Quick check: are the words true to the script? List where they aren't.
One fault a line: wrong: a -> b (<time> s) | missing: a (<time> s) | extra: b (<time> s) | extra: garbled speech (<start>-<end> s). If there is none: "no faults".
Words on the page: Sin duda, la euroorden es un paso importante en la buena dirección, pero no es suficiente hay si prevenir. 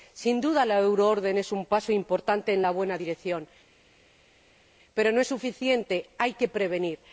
wrong: si -> que (6.3 s)